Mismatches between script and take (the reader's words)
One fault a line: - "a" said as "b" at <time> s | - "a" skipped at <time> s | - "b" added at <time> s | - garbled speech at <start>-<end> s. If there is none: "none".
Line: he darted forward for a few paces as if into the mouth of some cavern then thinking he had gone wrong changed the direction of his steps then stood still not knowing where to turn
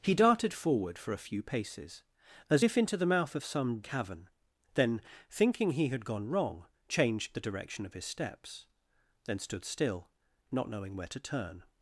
none